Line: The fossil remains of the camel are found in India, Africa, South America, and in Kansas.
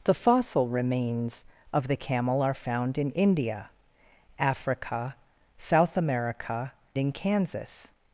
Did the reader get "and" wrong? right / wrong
wrong